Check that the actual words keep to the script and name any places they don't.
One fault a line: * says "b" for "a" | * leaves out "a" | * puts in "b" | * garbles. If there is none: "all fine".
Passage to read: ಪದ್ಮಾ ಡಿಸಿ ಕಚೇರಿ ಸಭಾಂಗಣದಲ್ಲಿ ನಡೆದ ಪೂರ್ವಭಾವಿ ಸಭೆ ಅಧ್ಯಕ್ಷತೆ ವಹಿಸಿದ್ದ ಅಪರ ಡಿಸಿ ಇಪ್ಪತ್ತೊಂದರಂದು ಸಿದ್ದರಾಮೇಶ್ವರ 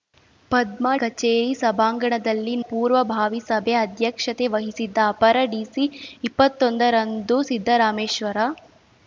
* leaves out "ಡಿಸಿ"
* leaves out "ನಡೆದ"